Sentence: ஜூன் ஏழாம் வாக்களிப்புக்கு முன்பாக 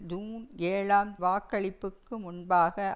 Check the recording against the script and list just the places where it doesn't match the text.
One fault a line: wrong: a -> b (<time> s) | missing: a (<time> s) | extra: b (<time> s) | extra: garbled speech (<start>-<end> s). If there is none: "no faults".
no faults